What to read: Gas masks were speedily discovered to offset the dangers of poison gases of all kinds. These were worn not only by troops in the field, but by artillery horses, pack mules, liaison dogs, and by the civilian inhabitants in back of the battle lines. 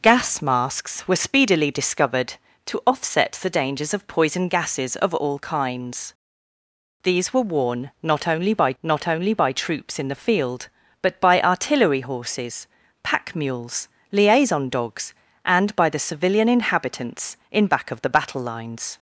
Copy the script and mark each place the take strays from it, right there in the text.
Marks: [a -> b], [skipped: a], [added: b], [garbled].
Gas masks were speedily discovered to offset the dangers of poison gases of all kinds. These were worn not only by [added: not only by] troops in the field, but by artillery horses, pack mules, liaison dogs, and by the civilian inhabitants in back of the battle lines.